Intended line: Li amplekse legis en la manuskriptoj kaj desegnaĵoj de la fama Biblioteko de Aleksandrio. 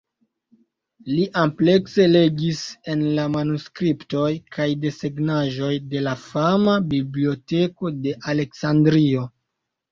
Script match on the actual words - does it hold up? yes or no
yes